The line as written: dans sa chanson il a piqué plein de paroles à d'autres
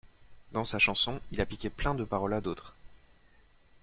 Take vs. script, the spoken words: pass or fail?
pass